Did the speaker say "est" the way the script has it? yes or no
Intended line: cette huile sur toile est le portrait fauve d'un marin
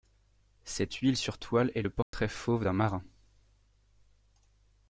yes